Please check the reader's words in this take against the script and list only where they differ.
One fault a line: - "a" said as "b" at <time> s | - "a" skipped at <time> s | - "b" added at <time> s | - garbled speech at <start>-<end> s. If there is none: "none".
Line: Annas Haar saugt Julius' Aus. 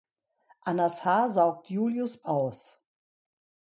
none